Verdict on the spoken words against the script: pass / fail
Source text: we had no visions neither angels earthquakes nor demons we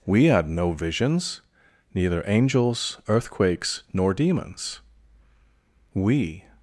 pass